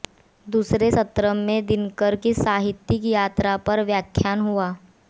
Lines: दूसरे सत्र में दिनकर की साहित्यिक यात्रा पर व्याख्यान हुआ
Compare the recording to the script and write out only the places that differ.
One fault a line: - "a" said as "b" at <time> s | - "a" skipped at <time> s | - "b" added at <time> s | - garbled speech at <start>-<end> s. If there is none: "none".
none